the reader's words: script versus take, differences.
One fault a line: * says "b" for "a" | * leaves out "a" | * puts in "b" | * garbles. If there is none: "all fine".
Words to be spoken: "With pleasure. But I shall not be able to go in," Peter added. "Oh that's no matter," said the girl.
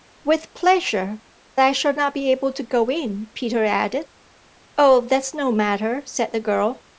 * leaves out "But"